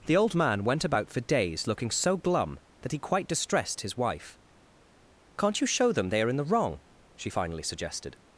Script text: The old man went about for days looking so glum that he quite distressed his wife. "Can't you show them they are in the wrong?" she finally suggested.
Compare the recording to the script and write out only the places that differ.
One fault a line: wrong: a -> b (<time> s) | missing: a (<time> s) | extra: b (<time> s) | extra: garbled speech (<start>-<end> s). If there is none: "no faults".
no faults